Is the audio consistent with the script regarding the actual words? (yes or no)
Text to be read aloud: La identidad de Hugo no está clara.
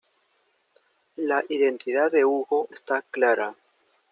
no